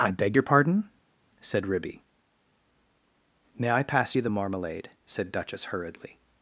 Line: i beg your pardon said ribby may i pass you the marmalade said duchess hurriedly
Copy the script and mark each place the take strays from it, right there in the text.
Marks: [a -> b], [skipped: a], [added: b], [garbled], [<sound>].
i beg your pardon said ribby may i pass you the marmalade said duchess hurriedly